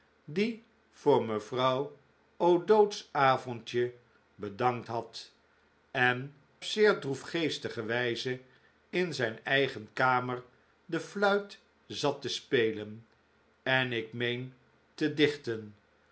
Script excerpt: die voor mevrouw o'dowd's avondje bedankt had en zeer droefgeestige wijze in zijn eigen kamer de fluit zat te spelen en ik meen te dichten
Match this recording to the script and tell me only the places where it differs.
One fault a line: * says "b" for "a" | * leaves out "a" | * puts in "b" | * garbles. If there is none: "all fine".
all fine